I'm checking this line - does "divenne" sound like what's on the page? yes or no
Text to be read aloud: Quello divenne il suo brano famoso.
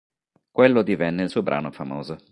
yes